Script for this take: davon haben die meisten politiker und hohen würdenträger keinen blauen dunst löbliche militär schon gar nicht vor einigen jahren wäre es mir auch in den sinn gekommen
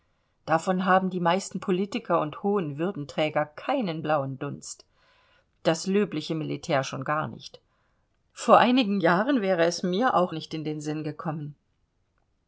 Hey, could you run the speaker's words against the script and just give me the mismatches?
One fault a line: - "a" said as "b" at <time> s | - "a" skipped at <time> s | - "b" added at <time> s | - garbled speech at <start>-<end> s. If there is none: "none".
- "das" added at 5.6 s
- "nicht" added at 10.3 s